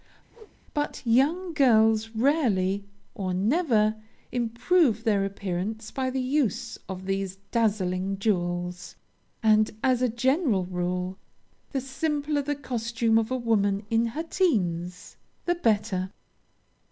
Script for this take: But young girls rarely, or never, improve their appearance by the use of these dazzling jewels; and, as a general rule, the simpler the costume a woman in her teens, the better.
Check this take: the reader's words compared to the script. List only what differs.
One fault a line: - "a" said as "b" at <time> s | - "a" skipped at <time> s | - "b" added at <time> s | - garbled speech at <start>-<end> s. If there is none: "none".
- "of" added at 13.2 s